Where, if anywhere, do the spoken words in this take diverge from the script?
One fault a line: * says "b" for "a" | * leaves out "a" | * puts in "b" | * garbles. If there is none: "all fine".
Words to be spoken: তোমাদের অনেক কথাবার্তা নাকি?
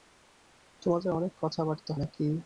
all fine